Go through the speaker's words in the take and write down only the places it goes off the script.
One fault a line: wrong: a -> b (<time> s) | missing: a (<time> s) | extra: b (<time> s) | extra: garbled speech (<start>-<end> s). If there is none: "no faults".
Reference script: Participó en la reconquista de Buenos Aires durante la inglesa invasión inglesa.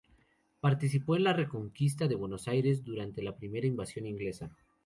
wrong: inglesa -> primera (3.4 s)